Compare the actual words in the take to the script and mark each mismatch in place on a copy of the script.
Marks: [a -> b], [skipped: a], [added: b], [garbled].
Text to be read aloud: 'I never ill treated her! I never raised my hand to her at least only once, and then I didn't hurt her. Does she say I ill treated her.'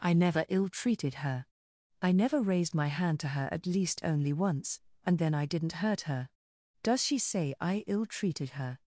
'I never ill treated her! I never raised my hand to her at least only once, and then I didn't hurt her. Does she say I ill treated her.'